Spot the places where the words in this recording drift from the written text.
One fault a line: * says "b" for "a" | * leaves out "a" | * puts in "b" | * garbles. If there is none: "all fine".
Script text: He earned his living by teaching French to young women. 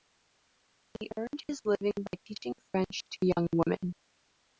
all fine